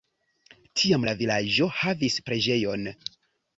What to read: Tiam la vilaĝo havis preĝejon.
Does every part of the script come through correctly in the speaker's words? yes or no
yes